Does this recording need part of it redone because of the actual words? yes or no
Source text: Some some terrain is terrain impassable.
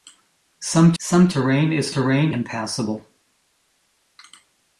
no